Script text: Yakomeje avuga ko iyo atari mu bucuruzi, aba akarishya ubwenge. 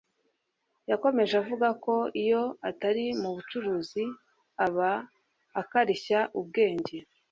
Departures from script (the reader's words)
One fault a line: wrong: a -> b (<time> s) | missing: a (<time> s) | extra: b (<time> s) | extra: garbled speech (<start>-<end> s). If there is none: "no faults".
no faults